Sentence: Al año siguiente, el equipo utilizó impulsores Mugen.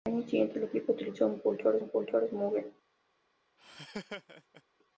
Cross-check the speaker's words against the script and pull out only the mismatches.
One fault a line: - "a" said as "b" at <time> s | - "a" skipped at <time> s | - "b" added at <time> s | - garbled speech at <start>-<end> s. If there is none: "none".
- "impulsores" added at 1.8 s